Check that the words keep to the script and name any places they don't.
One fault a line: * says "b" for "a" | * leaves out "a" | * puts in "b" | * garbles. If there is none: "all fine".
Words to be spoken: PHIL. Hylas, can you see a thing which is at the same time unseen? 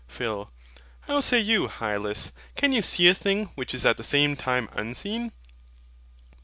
* puts in "How say you"